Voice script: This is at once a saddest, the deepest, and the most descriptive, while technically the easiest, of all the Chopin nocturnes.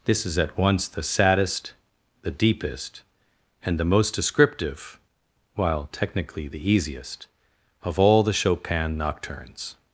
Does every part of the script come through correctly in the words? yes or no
no